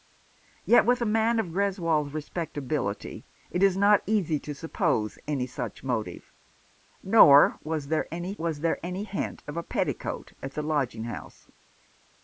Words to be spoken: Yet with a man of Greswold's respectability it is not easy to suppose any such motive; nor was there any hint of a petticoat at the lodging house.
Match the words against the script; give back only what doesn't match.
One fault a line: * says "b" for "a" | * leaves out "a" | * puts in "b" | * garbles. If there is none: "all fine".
* puts in "was there any"